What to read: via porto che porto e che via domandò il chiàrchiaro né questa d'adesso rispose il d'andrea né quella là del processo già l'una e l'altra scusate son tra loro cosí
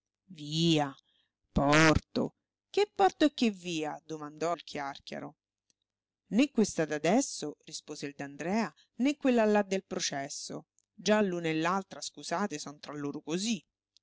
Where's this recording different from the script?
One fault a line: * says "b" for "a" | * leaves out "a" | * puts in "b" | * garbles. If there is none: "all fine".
all fine